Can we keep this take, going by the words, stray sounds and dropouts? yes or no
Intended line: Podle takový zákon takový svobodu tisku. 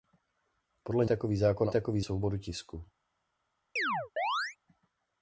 no